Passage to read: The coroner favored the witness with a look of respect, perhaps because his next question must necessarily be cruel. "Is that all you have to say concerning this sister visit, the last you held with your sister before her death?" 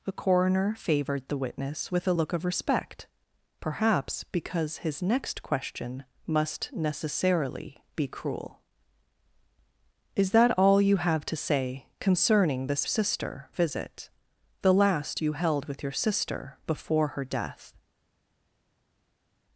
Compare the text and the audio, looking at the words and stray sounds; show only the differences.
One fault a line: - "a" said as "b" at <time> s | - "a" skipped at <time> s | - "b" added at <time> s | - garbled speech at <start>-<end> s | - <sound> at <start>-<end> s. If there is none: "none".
none